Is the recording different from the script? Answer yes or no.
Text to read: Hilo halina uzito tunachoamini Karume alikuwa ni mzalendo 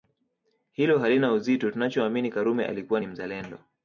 no